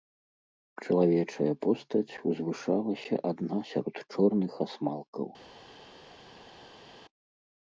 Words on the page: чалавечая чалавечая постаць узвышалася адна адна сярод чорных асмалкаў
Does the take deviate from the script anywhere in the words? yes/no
yes